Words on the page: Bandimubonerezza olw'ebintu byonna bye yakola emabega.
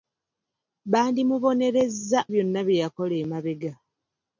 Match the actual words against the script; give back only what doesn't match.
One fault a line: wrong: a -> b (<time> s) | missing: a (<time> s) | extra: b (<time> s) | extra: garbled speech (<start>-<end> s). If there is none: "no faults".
missing: olw'ebintu (2.2 s)